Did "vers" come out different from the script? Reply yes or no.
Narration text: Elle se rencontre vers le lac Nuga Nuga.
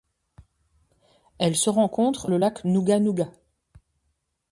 yes